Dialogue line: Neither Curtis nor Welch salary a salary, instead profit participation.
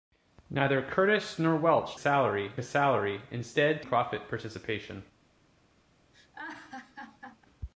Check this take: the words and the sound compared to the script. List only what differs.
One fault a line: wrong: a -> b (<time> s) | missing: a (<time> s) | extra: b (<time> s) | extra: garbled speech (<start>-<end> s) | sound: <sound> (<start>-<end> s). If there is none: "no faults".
sound: laugh (6.1-7.5 s)